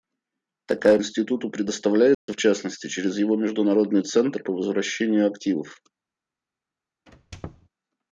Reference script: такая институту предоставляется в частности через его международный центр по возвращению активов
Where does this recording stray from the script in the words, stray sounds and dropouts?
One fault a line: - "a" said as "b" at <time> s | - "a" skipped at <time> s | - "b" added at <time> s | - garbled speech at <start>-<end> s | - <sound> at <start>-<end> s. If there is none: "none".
- dropout at 2.1-2.3 s
- squeak at 7.1-7.7 s